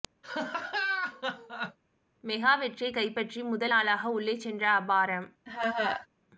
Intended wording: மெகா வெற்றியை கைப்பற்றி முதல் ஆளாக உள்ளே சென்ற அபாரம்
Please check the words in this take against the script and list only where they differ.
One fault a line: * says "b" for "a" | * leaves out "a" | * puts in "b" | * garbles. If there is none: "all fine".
all fine